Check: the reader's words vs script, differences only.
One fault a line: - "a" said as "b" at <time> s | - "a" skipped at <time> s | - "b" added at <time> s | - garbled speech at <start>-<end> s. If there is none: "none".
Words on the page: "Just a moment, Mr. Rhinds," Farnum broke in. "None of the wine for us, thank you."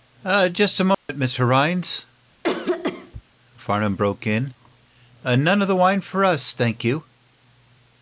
none